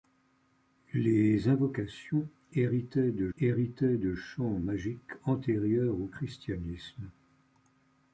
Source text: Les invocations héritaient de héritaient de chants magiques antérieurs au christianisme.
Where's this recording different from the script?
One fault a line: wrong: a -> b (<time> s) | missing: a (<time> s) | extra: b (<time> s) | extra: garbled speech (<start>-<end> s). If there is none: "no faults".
no faults